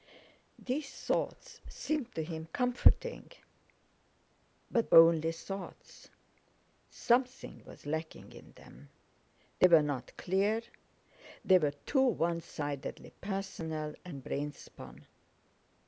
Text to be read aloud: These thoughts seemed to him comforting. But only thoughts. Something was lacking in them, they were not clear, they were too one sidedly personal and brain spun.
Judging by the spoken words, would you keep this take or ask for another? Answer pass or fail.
pass